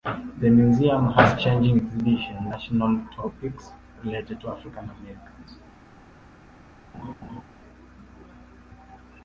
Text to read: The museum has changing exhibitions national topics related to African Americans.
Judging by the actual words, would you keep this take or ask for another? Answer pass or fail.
pass